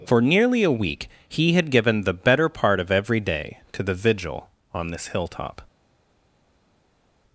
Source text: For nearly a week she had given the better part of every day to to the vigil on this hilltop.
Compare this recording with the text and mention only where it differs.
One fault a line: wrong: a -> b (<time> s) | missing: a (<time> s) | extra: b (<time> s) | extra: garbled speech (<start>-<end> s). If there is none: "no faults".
wrong: she -> he (1.3 s)
missing: to (3.8 s)